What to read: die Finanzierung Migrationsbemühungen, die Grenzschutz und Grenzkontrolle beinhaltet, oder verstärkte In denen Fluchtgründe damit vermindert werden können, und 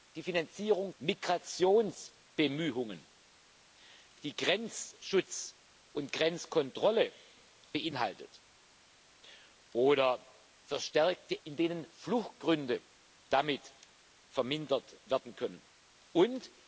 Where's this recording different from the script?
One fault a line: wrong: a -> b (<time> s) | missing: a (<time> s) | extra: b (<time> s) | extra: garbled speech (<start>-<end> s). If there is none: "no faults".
no faults